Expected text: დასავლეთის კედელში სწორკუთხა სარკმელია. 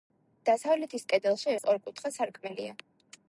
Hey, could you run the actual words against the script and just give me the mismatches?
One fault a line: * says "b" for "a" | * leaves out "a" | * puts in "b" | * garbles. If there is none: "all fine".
all fine